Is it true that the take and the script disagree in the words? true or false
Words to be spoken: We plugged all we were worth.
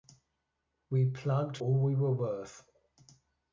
false